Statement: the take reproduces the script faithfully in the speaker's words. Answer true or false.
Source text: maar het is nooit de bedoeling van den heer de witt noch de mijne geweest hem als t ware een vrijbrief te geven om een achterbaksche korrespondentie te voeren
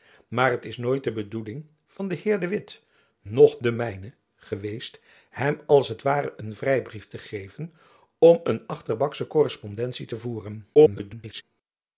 false